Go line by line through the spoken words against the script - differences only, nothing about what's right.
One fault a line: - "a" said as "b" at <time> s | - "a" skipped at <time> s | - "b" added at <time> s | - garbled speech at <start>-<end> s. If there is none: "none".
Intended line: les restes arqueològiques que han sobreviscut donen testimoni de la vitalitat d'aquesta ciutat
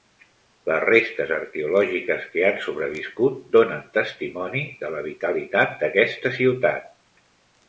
none